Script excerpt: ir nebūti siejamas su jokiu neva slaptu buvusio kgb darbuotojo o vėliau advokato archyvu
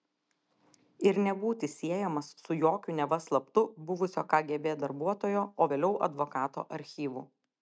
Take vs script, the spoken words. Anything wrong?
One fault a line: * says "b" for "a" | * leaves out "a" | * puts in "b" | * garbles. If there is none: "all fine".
all fine